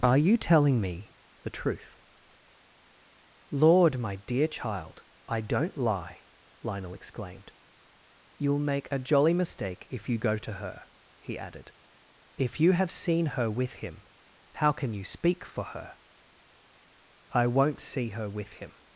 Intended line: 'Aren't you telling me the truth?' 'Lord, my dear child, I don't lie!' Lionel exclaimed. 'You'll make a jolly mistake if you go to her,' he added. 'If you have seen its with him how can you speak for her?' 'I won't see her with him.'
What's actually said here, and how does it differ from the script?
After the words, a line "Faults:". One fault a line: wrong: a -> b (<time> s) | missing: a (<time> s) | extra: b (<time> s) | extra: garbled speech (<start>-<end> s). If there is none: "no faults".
'Are you telling me the truth?' 'Lord, my dear child, I don't lie!' Lionel exclaimed. 'You'll make a jolly mistake if you go to her,' he added. 'If you have seen her with him how can you speak for her?' 'I won't see her with him.'
Faults:
wrong: Aren't -> Are (0.0 s)
wrong: its -> her (13.4 s)